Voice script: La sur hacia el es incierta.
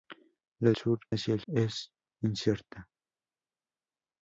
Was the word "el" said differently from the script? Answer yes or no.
no